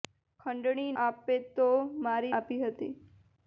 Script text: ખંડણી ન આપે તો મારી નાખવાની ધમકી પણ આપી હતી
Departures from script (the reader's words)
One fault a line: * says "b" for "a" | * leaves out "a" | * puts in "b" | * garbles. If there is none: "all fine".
* leaves out "ન"
* leaves out "નાખવાની ધમકી પણ"